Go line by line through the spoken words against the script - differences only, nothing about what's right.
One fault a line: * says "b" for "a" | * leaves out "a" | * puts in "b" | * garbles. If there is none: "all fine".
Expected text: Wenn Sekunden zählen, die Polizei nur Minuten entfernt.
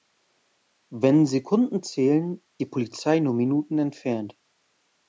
all fine